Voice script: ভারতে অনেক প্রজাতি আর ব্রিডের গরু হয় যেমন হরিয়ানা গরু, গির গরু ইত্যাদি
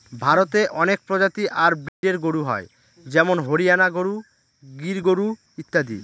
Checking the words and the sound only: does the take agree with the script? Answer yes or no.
no